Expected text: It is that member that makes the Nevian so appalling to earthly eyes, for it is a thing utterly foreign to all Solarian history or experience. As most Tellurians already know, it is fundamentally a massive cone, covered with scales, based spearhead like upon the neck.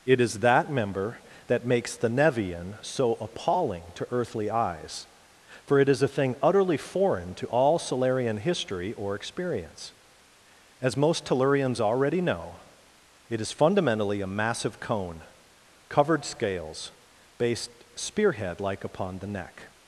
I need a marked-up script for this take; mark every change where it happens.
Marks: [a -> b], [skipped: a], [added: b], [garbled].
It is that member that makes the Nevian so appalling to earthly eyes, for it is a thing utterly foreign to all Solarian history or experience. As most Tellurians already know, it is fundamentally a massive cone, covered [skipped: with] scales, based spearhead like upon the neck.